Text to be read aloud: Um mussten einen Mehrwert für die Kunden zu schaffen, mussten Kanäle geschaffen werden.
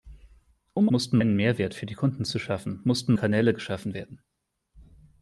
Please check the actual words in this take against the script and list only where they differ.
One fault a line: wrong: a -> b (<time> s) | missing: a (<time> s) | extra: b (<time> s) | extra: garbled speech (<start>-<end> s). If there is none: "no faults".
no faults